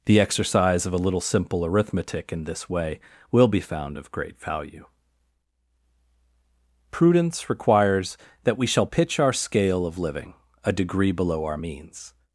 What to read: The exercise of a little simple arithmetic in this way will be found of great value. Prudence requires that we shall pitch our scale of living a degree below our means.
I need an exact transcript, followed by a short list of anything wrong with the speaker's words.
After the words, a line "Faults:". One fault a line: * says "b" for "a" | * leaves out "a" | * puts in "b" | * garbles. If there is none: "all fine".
The exercise of a little simple arithmetic in this way will be found of great value. Prudence requires that we shall pitch our scale of living a degree below our means.
Faults:
all fine